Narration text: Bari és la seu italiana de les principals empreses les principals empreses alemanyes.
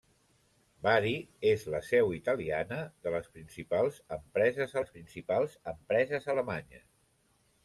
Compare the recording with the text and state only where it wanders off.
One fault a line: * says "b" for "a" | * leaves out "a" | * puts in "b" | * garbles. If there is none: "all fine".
all fine